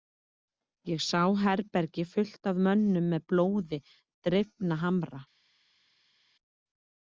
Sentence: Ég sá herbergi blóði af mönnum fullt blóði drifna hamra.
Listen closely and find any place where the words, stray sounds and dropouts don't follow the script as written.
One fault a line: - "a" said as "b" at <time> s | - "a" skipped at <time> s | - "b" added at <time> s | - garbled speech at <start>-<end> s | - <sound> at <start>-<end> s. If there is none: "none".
- "blóði" said as "fullt" at 2.1 s
- "fullt" said as "með" at 3.1 s